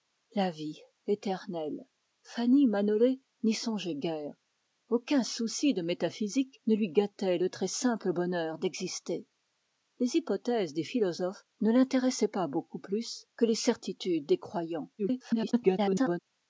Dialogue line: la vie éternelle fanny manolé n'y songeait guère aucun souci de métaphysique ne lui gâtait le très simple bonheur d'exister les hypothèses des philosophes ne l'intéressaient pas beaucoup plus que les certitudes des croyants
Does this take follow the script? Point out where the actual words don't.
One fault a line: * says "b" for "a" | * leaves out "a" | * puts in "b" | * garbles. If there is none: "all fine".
* garbles